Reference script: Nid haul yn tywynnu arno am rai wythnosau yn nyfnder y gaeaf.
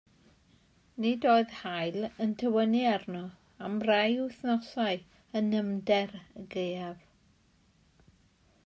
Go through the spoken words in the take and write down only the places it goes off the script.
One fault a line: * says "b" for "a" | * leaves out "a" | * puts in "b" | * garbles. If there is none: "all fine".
* puts in "oedd"